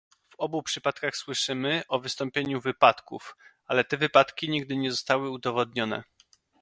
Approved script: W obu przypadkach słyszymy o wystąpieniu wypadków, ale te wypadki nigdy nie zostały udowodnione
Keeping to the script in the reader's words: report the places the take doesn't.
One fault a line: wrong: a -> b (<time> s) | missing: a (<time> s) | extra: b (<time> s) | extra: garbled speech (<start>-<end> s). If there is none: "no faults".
no faults